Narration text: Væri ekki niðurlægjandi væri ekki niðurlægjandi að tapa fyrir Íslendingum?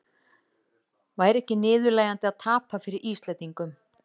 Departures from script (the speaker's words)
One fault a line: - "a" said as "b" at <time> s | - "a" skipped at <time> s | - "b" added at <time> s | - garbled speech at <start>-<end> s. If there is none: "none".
- "væri ekki niðurlægjandi" skipped at 2.3 s